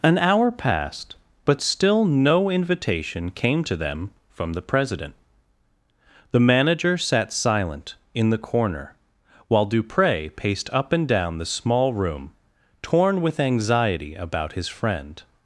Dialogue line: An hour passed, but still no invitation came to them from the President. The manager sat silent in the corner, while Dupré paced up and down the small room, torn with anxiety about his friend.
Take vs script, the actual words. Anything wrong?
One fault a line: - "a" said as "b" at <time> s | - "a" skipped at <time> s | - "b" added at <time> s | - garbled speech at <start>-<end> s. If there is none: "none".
none